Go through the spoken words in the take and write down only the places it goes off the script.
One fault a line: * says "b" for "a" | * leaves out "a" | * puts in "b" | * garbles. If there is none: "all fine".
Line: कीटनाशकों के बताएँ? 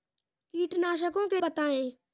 all fine